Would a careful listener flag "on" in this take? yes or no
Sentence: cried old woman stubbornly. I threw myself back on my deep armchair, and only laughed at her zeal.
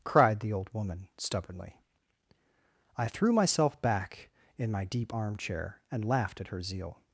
yes